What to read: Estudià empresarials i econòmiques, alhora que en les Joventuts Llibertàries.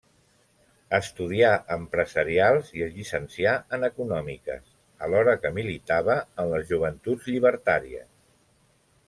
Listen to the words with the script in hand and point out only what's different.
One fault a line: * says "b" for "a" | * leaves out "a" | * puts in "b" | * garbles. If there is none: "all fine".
* puts in "es llicencià en"
* puts in "militava"